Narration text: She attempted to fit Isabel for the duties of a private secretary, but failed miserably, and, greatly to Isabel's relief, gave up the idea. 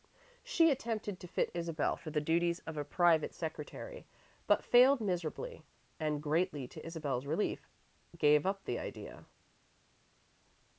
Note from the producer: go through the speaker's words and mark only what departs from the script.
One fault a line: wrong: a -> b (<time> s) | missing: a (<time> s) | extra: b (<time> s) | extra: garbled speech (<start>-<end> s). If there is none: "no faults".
no faults